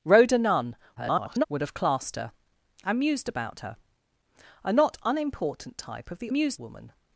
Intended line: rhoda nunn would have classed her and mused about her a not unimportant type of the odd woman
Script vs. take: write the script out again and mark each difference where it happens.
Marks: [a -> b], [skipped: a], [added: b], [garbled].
rhoda nunn [garbled] would have classed her and mused about her a not unimportant type of the [odd -> mused] woman